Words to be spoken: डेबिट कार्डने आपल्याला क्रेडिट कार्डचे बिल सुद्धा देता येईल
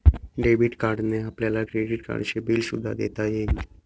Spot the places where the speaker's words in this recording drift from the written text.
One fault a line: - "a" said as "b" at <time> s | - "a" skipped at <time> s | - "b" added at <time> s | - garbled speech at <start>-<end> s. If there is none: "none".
none